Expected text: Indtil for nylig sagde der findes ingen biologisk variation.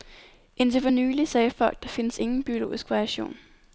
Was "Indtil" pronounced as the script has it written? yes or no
yes